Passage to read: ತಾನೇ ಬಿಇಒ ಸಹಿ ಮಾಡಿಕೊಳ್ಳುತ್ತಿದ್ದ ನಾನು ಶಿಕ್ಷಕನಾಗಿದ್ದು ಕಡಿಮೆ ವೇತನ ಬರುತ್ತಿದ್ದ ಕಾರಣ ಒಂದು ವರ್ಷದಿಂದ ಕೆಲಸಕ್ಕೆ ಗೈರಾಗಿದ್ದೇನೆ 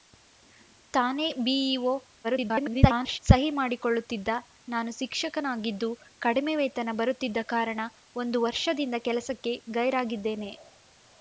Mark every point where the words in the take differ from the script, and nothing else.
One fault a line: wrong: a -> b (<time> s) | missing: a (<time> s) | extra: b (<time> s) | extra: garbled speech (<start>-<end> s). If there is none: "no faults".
extra: garbled speech (2.2-3.2 s)